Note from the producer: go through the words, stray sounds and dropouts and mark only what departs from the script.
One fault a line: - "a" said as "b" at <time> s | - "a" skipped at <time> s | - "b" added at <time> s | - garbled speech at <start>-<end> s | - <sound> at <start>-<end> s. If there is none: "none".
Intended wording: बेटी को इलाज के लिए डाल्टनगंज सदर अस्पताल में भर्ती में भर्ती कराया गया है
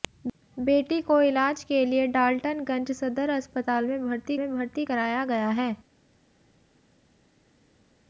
none